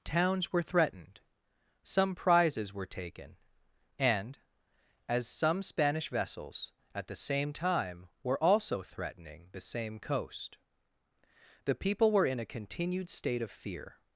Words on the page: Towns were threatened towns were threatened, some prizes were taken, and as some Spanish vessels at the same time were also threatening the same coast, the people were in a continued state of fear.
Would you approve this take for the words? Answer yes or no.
no